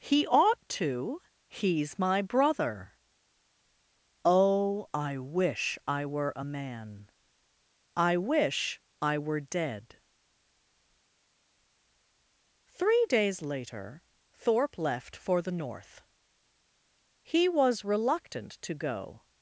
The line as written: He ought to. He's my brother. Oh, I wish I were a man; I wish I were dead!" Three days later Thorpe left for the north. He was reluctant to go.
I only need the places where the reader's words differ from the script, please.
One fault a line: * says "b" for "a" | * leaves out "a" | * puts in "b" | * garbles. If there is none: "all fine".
all fine